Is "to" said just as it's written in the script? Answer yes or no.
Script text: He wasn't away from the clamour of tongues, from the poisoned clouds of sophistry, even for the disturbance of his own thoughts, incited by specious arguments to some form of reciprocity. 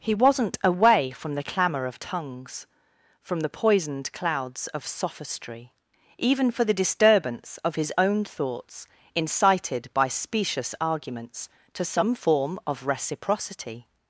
yes